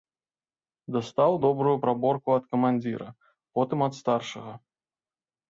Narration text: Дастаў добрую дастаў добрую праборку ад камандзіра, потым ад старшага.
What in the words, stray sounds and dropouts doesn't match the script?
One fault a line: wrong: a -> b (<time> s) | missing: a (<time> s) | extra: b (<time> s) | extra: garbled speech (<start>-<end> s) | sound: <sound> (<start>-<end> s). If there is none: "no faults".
missing: дастаў добрую (1.7 s)